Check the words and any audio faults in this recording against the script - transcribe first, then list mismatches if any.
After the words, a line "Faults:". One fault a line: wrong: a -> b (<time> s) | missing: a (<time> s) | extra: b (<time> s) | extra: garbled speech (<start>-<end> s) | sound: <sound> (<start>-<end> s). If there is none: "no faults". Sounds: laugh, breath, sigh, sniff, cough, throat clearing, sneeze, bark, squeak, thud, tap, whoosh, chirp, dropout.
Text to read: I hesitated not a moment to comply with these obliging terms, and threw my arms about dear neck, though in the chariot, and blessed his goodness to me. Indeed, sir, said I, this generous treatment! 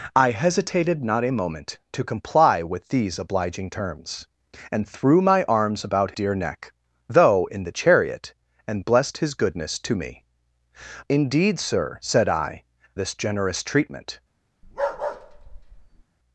I hesitated not a moment to comply with these obliging terms, and threw my arms about dear neck, though in the chariot, and blessed his goodness to me. Indeed, sir, said I, this generous treatment!
Faults:
sound: bark (14.6-16.0 s)